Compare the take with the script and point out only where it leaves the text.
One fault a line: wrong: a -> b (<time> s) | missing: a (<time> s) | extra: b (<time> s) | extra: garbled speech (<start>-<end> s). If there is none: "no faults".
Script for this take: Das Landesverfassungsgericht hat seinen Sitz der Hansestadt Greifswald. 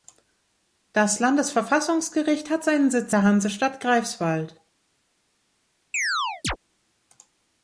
no faults